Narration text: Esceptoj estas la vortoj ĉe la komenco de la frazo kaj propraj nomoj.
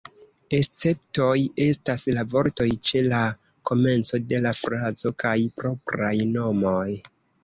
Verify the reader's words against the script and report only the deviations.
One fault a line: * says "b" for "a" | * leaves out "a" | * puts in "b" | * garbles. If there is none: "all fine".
all fine